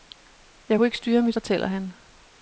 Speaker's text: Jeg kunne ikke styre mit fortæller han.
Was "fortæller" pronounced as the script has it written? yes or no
yes